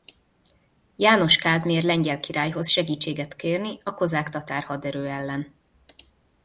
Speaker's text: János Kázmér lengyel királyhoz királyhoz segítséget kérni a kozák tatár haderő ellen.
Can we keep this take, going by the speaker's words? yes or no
no